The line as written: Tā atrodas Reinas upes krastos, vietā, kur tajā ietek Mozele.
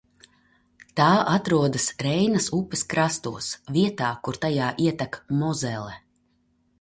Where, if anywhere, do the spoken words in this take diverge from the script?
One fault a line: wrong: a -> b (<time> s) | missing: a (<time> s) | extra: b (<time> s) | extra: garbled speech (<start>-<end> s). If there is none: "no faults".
no faults